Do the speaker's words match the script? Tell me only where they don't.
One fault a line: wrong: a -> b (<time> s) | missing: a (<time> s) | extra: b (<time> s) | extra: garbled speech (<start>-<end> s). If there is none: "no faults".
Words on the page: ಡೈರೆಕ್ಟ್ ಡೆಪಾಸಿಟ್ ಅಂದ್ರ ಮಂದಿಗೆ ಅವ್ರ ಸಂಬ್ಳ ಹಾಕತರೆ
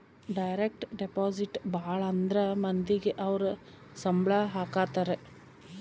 extra: ಭಾಳ (1.7 s)